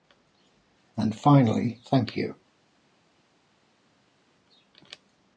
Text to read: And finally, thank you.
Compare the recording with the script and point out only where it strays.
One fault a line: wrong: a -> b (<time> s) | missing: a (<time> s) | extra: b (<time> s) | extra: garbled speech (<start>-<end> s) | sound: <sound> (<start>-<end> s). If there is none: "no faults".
no faults